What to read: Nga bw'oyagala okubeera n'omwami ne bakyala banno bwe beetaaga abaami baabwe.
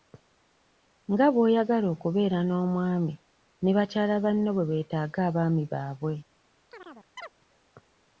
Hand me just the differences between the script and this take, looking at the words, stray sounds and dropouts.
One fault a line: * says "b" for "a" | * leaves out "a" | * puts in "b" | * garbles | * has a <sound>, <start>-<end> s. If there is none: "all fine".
* has a chirp, 6.7-7.3 s